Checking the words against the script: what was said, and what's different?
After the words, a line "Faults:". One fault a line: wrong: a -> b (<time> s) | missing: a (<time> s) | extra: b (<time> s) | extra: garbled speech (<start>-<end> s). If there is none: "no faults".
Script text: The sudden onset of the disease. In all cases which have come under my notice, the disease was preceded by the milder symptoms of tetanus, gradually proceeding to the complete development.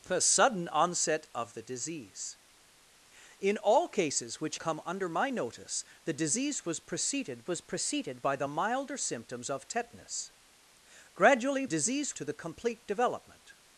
The sudden onset of the disease. In all cases which come under my notice, the disease was preceded was preceded by the milder symptoms of tetanus, gradually disease to the complete development.
Faults:
missing: have (4.6 s)
extra: was preceded (7.5 s)
wrong: proceeding -> disease (11.6 s)